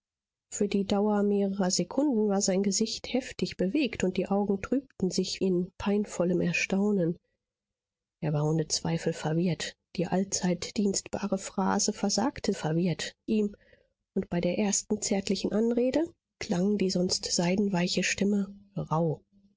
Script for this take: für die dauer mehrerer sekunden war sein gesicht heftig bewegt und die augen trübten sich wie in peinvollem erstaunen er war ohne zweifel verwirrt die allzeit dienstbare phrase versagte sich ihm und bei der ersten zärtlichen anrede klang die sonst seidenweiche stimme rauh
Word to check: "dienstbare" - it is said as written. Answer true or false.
true